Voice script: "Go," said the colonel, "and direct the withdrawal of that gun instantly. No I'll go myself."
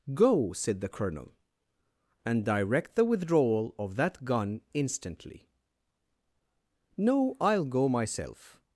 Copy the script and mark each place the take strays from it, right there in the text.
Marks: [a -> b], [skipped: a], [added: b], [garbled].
"Go," said the colonel, "and direct the withdrawal of that gun instantly. No I'll go myself."